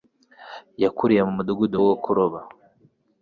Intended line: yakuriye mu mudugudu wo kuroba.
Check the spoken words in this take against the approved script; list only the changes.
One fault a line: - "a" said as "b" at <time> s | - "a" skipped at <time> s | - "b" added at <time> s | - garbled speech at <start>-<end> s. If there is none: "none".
none